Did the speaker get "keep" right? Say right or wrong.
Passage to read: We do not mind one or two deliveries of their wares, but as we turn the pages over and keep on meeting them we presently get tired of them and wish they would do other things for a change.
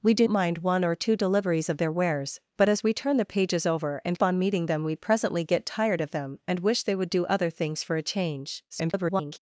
wrong